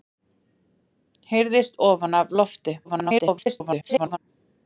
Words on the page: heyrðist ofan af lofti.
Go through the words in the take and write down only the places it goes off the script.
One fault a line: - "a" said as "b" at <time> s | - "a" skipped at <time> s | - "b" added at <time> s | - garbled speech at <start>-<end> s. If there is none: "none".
- garbled speech at 2.8-4.2 s